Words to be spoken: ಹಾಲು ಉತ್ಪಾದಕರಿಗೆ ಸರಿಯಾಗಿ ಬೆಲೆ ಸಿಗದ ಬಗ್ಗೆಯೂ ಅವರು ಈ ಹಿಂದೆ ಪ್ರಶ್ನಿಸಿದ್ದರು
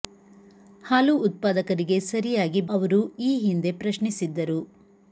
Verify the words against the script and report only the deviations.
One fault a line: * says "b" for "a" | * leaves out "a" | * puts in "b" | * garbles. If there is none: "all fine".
* leaves out "ಬೆಲೆ ಸಿಗದ ಬಗ್ಗೆಯೂ"